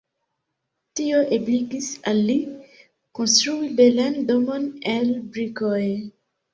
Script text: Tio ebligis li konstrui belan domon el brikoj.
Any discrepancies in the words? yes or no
yes